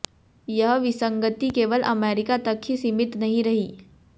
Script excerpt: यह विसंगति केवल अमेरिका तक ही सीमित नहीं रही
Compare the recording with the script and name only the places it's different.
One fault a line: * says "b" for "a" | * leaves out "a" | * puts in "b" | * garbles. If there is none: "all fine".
all fine